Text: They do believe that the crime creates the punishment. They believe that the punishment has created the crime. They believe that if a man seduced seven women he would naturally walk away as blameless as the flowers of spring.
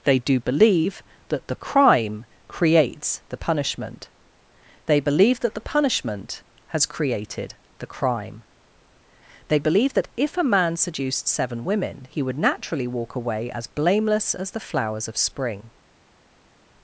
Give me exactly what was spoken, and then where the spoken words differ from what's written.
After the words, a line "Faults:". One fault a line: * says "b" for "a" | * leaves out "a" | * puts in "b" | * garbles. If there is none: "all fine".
They do believe that the crime creates the punishment. They believe that the punishment has created the crime. They believe that if a man seduced seven women he would naturally walk away as blameless as the flowers of spring.
Faults:
all fine